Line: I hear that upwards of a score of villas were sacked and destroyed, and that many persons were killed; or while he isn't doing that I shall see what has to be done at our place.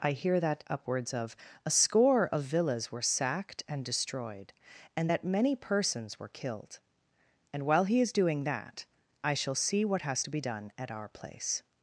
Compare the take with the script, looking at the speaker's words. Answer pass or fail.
fail